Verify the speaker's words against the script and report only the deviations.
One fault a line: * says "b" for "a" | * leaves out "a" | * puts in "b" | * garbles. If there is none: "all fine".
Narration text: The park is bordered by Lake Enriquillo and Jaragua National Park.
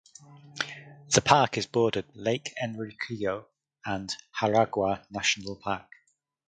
* leaves out "by"